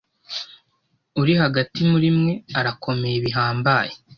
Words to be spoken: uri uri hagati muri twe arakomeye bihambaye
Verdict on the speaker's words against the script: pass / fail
fail